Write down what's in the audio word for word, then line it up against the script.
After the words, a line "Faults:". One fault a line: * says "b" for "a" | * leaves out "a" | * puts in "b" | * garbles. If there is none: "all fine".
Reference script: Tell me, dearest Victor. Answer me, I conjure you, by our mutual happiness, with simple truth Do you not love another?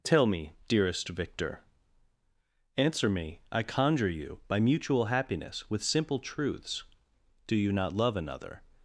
Tell me, dearest Victor. Answer me, I conjure you, by mutual happiness, with simple truths Do you not love another?
Faults:
* leaves out "our"
* says "truths" for "truth"